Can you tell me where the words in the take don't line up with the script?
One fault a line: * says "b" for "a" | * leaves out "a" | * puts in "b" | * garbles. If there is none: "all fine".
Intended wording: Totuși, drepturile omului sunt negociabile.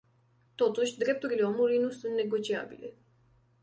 * puts in "nu"